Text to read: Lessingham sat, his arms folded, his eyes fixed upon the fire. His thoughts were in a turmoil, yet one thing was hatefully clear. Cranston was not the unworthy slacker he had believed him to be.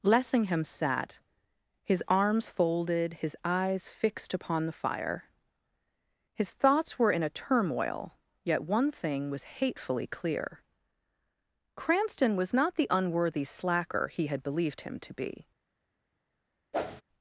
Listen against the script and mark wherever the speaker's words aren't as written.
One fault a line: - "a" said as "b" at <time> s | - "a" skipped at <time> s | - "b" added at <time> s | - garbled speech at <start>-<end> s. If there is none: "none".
none